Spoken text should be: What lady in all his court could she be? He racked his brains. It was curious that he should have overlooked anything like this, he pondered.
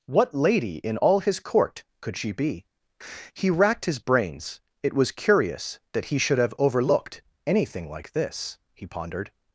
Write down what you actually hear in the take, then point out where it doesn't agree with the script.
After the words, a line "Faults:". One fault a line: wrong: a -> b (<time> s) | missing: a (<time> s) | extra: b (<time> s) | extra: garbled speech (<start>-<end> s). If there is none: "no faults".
What lady in all his court could she be? He racked his brains. It was curious that he should have overlooked anything like this, he pondered.
Faults:
no faults